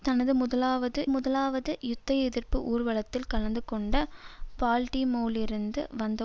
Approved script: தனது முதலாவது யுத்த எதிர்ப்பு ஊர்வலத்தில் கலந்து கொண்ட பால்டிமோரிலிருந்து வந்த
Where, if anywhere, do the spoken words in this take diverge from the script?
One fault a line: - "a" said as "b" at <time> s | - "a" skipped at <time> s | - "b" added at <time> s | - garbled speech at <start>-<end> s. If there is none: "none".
- "முதலாவது" added at 1.1 s